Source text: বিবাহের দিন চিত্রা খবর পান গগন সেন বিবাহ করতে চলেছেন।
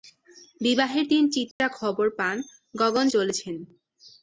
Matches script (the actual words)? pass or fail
fail